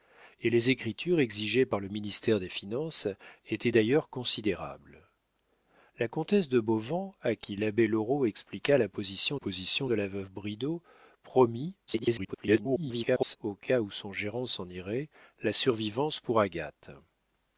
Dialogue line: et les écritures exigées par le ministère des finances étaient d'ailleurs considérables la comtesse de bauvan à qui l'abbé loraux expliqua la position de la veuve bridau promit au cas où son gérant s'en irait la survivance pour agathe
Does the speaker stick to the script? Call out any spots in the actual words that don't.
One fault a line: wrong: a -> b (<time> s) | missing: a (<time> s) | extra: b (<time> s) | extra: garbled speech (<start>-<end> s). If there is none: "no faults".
extra: position (9.3 s)
extra: garbled speech (11.9-13.4 s)